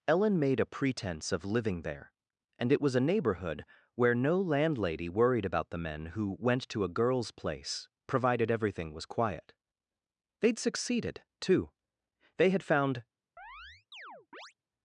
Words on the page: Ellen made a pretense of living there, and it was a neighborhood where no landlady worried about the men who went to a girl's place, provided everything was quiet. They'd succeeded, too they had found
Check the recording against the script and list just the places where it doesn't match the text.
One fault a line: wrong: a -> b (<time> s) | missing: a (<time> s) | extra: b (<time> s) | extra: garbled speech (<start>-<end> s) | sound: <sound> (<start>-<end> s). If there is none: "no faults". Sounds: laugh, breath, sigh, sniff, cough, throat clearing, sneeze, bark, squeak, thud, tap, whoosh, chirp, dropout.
sound: chirp (13.4-14.5 s)